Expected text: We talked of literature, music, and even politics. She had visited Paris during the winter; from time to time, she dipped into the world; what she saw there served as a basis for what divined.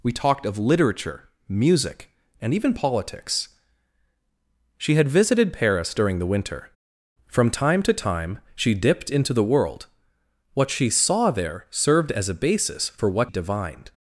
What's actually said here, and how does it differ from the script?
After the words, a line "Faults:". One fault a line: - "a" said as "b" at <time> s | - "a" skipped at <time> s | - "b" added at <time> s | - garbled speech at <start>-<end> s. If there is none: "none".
We talked of literature, music, and even politics. She had visited Paris during the winter; from time to time, she dipped into the world; what she saw there served as a basis for what divined.
Faults:
none